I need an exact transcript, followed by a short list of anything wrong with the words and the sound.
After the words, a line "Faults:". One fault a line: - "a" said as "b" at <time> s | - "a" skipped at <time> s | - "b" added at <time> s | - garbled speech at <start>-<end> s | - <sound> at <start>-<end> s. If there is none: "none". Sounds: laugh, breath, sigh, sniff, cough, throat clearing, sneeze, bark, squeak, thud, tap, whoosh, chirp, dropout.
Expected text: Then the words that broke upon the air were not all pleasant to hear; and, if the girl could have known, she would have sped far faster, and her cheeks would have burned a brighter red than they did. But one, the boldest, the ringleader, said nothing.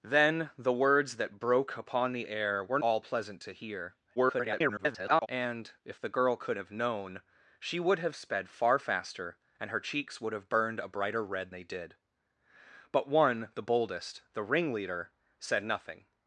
Then the words that broke upon the air were all pleasant to hear; [garbled] and, if the girl could have known, she would have sped far faster, and her cheeks would have burned a brighter red they did. But one, the boldest, the ringleader, said nothing.
Faults:
- "not" skipped at 2.8 s
- garbled speech at 4.2-5.3 s
- "than" skipped at 11.5 s